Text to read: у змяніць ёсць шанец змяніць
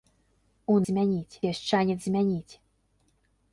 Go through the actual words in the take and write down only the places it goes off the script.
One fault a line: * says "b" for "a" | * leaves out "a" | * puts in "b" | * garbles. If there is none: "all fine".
all fine